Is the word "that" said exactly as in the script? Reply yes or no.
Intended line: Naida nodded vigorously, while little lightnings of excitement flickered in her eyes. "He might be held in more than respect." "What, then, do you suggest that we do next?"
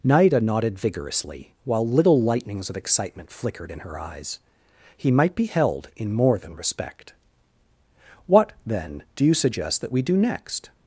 yes